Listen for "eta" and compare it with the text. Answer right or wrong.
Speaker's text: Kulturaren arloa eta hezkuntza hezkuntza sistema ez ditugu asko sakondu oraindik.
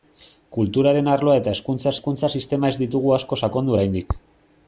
right